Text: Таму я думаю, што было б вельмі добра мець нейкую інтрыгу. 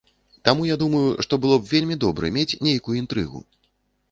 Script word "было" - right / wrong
right